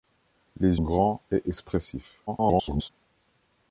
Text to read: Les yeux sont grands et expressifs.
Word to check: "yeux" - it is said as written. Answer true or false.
false